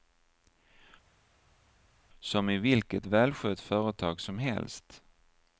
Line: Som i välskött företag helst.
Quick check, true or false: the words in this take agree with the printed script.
false